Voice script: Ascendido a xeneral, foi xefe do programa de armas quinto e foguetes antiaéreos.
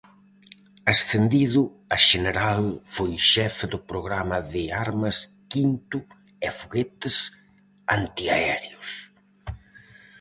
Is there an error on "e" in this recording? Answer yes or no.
no